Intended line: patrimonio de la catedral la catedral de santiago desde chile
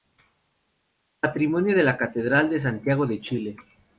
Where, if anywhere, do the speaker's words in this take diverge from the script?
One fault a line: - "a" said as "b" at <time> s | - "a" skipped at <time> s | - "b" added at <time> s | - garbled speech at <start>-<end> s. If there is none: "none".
- "la catedral" skipped at 2.5 s
- "desde" said as "de" at 3.0 s